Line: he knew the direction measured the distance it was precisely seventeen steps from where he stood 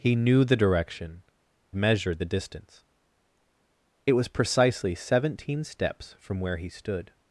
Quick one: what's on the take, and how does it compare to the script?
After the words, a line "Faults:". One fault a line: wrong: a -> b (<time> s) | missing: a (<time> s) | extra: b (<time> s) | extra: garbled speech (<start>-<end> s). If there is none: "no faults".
he knew the direction measured the distance it was precisely seventeen steps from where he stood
Faults:
no faults